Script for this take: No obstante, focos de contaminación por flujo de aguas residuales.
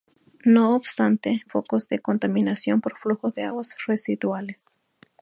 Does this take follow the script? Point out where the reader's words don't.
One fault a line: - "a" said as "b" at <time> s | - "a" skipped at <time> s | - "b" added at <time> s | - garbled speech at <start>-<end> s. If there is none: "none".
none